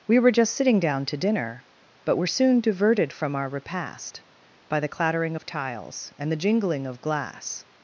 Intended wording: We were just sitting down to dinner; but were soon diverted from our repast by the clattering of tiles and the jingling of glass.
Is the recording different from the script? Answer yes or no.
no